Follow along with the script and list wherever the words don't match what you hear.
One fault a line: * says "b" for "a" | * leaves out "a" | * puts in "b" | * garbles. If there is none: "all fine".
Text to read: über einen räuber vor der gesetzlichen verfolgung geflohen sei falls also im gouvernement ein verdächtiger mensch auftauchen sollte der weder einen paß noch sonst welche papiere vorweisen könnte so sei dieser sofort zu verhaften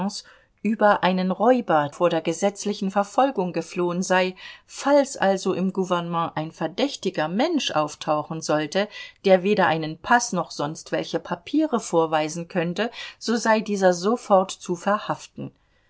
all fine